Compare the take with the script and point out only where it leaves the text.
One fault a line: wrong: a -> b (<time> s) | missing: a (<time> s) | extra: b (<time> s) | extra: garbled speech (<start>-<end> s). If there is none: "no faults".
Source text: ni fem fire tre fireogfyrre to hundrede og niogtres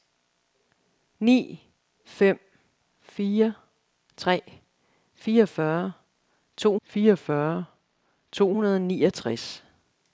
extra: fireogfyrre to (6.8 s)